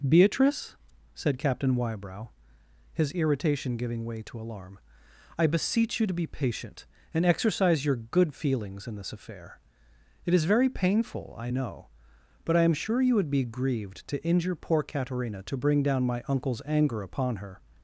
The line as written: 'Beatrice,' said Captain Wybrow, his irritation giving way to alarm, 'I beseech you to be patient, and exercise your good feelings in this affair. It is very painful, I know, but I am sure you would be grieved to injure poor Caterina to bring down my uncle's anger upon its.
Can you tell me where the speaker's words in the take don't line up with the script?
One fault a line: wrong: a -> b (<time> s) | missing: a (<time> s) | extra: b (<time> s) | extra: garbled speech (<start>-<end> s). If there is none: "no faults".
wrong: its -> her (17.4 s)